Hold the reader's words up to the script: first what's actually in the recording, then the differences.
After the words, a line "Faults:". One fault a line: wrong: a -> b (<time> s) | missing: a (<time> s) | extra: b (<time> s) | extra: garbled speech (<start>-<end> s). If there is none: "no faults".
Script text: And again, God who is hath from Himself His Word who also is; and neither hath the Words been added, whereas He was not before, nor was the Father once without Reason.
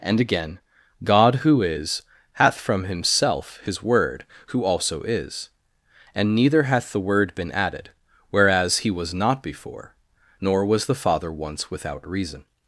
And again, God who is hath from Himself His Word who also is; and neither hath the Word been added, whereas He was not before, nor was the Father once without Reason.
Faults:
wrong: Words -> Word (7.0 s)